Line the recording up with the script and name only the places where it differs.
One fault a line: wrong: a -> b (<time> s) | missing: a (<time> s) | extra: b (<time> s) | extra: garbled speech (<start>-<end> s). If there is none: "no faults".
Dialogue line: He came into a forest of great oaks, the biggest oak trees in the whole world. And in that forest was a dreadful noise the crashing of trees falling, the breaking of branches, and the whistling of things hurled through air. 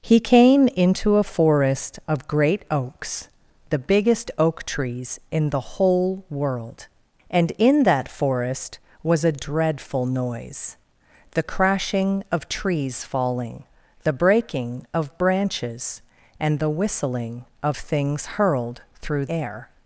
no faults